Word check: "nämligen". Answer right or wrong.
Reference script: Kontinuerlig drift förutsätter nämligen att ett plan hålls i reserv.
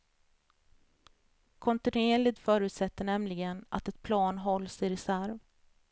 right